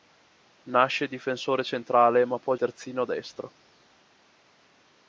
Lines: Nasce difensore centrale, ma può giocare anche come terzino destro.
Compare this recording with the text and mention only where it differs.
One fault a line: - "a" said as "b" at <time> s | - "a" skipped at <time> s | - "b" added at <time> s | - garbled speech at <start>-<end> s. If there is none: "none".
- "giocare anche come" skipped at 2.5 s